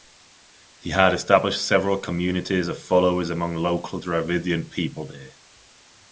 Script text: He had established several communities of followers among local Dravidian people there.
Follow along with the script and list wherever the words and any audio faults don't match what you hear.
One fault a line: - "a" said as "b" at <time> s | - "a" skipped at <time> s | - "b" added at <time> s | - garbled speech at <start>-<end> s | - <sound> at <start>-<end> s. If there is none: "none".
none